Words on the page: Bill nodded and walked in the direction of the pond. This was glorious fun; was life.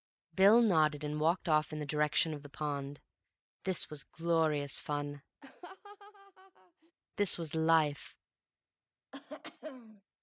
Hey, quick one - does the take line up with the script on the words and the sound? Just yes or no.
no